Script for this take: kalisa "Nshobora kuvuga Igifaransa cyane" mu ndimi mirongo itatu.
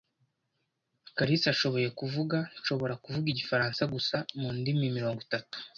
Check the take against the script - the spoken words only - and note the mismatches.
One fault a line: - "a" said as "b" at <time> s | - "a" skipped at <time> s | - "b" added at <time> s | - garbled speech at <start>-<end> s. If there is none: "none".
- "ashoboye kuvuga" added at 1.5 s
- "cyane" said as "gusa" at 3.9 s